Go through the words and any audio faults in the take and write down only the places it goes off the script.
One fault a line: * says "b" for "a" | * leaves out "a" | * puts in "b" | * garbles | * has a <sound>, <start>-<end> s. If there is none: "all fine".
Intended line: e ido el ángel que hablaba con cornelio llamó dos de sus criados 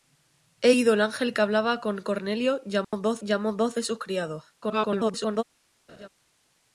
* has a dropout, 2.8-2.9 s
* puts in "llamó dos"
* garbles
* has a laugh, 5.9-6.1 s